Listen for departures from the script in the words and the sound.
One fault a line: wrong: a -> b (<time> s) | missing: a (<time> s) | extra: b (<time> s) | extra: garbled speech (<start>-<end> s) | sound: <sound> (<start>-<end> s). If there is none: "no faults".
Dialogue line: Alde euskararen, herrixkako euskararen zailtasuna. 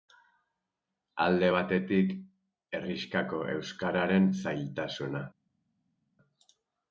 wrong: euskararen -> batetik (1.5 s)